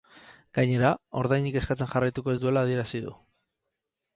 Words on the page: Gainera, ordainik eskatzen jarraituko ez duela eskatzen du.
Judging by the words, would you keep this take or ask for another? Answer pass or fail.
fail